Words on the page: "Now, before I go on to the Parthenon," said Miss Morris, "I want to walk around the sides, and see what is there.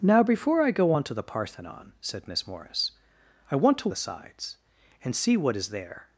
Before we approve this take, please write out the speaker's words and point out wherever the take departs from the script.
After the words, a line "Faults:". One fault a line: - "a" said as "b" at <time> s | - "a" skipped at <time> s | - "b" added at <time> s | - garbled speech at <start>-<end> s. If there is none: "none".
"Now, before I go on to the Parthenon," said Miss Morris, "I want to the sides, and see what is there.
Faults:
- "walk around" skipped at 3.9 s